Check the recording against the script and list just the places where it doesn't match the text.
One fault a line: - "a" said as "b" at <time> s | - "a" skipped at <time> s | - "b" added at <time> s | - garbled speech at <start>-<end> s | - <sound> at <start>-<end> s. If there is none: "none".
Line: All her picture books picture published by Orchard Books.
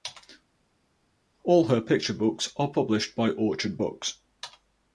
- "picture" said as "are" at 2.6 s